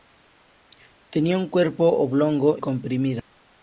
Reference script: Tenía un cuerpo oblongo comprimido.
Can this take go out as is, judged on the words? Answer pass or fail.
pass